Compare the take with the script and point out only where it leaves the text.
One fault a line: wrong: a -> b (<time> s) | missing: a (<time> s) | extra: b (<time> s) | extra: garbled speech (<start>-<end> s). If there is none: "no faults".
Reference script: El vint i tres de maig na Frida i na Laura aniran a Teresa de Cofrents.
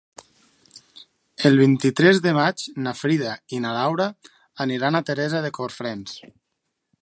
no faults